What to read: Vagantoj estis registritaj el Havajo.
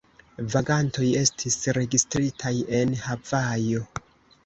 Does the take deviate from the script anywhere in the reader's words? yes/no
yes